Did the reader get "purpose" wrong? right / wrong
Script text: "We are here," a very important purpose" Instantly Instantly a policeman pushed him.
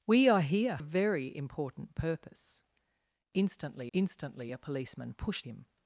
right